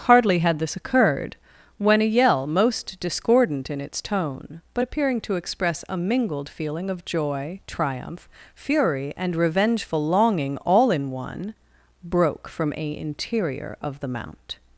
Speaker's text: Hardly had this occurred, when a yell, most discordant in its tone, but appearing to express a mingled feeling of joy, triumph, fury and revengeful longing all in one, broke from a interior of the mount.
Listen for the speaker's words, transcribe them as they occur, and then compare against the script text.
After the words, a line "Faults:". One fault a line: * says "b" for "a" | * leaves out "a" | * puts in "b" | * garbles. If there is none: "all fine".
Hardly had this occurred, when a yell, most discordant in its tone, but appearing to express a mingled feeling of joy, triumph, fury and revengeful longing all in one, broke from a interior of the mount.
Faults:
all fine